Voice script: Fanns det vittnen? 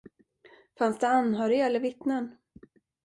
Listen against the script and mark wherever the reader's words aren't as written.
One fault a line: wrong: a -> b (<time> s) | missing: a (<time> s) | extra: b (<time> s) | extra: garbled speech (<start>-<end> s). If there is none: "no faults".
extra: anhöriga eller (1.1 s)